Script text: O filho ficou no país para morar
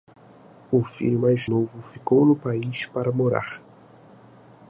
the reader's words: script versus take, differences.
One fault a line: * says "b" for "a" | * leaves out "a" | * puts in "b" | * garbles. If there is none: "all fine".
* puts in "mais novo"